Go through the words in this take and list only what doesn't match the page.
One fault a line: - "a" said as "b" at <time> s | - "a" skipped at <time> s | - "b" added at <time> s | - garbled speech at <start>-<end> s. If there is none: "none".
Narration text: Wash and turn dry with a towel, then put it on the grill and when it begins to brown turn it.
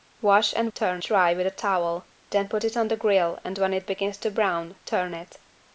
none